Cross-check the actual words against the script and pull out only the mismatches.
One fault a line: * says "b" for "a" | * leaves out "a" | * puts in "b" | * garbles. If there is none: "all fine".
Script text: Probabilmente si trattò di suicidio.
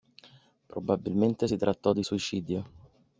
all fine